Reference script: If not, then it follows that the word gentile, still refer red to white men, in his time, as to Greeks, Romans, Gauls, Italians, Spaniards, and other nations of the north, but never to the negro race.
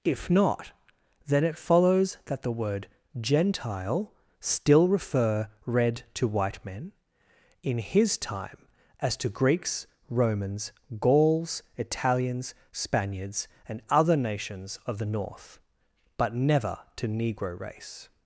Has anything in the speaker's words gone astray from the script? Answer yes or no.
yes